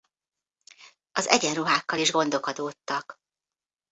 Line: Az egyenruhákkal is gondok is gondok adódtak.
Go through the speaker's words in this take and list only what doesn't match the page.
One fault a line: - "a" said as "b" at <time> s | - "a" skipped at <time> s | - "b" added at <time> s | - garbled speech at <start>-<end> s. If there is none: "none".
- "is gondok" skipped at 2.5 s